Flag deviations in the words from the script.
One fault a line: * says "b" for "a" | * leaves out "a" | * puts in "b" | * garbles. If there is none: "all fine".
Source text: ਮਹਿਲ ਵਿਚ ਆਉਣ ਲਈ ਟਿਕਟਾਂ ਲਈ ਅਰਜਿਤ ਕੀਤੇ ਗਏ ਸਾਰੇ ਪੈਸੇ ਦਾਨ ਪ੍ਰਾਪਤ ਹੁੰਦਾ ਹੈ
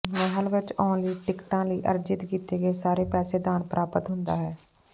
all fine